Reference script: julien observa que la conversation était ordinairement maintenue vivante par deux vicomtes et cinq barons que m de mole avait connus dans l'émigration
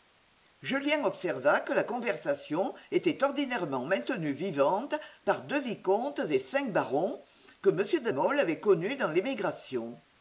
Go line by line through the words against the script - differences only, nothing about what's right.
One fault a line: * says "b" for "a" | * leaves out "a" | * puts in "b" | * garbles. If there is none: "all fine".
all fine